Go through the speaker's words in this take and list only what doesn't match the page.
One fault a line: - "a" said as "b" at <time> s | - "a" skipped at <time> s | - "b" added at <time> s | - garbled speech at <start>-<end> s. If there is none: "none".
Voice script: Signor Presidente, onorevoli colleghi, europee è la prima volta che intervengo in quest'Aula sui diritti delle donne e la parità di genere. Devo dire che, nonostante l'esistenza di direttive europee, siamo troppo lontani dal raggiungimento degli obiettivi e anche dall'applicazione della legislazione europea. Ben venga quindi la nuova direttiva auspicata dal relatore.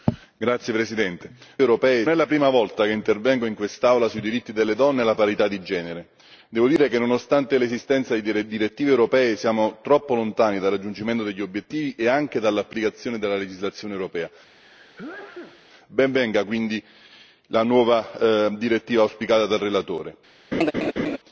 none